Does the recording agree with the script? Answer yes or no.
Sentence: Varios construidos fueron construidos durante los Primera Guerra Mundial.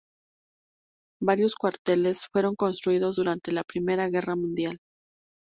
no